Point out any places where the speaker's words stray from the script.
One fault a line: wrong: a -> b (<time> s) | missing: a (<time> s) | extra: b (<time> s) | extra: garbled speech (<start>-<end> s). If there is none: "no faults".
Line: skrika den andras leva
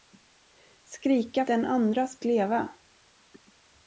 no faults